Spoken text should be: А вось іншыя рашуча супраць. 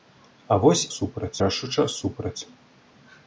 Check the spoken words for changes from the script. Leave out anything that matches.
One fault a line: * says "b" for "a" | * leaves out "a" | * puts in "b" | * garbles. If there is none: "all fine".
* says "супраць" for "іншыя"